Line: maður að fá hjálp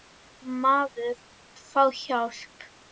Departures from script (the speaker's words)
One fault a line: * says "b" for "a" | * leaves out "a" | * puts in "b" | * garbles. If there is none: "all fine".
all fine